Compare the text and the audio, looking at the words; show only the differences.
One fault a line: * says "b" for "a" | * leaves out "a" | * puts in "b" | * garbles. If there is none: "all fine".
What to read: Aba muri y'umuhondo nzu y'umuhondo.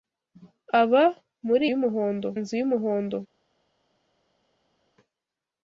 all fine